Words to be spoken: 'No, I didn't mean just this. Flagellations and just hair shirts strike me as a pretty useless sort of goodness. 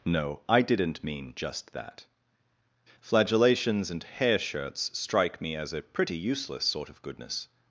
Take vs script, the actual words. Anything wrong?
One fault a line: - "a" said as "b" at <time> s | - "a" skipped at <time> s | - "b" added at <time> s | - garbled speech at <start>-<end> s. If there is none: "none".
- "this" said as "that" at 1.7 s
- "just" skipped at 4.0 s